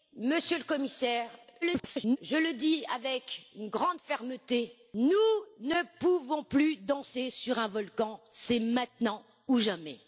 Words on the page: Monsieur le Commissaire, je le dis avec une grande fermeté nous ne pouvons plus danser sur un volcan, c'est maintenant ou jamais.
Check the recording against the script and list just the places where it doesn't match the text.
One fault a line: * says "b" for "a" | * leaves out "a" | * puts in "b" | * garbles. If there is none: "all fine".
* garbles